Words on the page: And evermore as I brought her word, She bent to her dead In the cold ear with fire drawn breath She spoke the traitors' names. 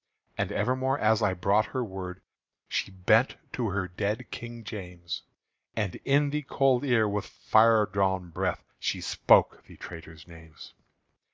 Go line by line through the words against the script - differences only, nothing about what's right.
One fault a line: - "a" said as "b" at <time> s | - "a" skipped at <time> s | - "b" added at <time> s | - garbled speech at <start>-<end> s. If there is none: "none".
- "King James And" added at 4.3 s